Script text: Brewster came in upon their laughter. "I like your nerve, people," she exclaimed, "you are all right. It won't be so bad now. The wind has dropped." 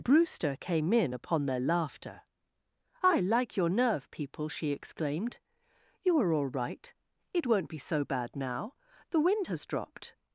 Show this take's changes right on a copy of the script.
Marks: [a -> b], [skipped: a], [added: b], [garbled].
Brewster came in upon their laughter. "I like your nerve, people," she exclaimed, "you are all right. It won't be so bad now. The wind has dropped."